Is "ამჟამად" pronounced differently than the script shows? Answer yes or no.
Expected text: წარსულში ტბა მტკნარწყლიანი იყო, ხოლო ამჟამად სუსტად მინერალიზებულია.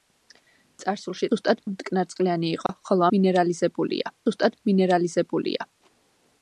yes